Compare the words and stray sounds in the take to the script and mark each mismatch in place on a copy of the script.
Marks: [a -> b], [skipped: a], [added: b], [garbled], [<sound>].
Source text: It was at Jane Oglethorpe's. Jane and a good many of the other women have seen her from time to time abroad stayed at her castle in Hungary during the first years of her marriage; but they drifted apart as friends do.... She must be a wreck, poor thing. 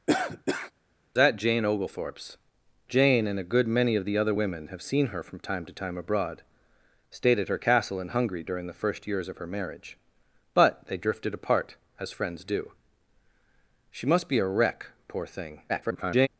[cough] It [skipped: was] at Jane Oglethorpe's. Jane and a good many of the other women have seen her from time to time abroad stayed at her castle in Hungary during the first years of her marriage; but they drifted apart as friends do.... She must be a wreck, poor thing. [garbled]